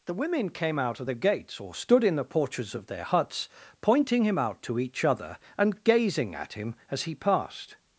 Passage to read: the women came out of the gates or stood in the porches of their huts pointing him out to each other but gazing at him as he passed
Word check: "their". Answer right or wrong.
right